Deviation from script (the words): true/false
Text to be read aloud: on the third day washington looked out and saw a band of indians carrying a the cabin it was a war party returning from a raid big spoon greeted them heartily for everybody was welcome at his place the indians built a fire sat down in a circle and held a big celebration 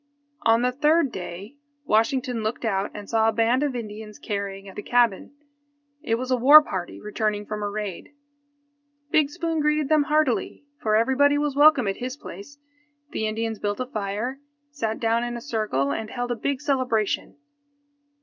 false